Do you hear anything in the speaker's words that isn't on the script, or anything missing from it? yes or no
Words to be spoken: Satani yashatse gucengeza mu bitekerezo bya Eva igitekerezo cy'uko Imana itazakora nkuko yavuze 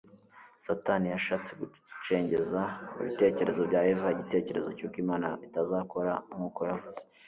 no